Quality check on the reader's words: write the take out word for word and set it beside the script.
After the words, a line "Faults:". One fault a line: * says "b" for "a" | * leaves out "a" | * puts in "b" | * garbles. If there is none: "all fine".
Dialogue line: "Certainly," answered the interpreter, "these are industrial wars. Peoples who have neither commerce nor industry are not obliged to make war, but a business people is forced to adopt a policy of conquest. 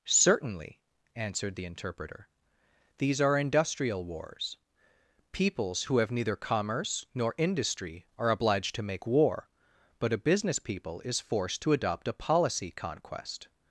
"Certainly," answered the interpreter, "these are industrial wars. Peoples who have neither commerce nor industry are obliged to make war, but a business people is forced to adopt a policy conquest.
Faults:
* leaves out "not"
* leaves out "of"